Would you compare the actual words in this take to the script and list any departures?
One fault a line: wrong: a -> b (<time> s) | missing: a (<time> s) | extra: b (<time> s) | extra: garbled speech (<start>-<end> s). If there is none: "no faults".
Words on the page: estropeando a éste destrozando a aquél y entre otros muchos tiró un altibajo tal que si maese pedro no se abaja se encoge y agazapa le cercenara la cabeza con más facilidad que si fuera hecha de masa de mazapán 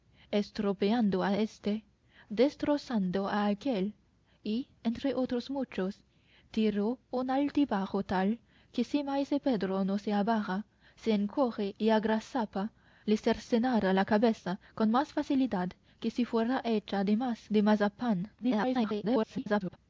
extra: garbled speech (18.4-19.8 s)